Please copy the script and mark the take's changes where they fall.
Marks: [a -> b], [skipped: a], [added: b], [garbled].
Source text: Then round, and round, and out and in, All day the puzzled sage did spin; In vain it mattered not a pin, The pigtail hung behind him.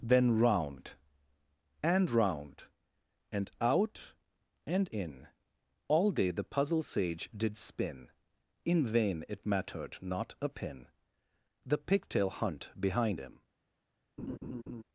Then round, and round, and out and in, All day the [puzzled -> puzzle] sage did spin; In vain it mattered not a pin, The pigtail [hung -> hunt] behind him.